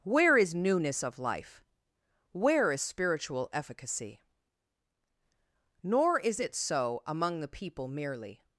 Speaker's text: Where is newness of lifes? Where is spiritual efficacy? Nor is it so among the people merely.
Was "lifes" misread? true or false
true